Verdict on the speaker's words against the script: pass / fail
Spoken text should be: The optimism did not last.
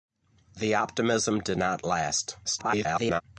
fail